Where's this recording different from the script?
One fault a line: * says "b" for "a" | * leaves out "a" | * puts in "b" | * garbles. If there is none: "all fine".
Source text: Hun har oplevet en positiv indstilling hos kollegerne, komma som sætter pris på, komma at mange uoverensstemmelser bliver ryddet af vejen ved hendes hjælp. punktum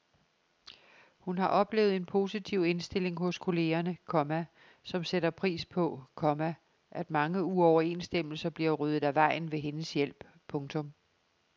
all fine